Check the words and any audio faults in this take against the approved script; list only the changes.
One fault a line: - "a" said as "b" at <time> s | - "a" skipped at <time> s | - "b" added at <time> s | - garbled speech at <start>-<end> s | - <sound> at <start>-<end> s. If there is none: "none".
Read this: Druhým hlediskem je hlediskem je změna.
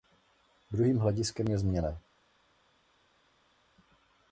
- "hlediskem je" skipped at 1.6 s